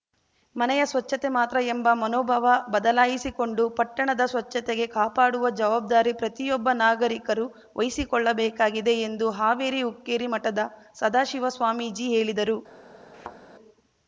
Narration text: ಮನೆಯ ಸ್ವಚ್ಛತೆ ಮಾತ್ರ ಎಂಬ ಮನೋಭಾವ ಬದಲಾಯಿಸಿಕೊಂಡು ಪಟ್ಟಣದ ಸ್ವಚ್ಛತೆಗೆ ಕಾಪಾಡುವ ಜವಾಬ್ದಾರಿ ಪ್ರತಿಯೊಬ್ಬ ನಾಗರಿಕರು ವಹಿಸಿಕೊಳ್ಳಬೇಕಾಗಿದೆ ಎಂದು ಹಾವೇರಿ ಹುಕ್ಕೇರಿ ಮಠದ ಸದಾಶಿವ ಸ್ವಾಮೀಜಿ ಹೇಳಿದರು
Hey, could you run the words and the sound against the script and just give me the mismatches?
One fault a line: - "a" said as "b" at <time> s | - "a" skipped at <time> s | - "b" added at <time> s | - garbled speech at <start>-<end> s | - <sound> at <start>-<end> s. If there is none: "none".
- thud at 13.1-13.4 s